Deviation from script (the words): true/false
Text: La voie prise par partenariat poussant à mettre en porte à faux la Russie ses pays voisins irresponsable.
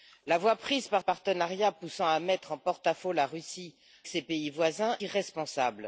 false